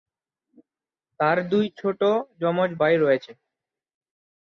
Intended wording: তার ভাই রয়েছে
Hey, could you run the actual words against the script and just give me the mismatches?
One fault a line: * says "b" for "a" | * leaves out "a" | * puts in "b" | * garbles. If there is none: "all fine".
* puts in "দুই ছোট যমজ"